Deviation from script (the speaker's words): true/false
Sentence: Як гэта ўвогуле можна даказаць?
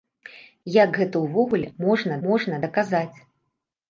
true